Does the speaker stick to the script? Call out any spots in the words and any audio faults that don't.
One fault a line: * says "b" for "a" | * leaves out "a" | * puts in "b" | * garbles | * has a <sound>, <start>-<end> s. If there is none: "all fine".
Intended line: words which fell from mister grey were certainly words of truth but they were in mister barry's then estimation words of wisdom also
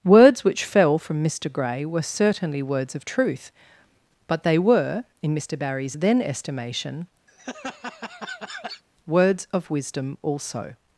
* has a laugh, 7.3-8.8 s